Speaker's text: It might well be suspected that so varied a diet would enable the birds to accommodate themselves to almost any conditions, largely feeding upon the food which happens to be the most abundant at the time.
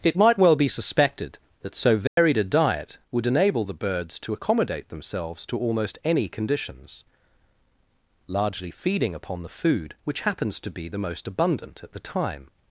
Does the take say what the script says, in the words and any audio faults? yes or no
no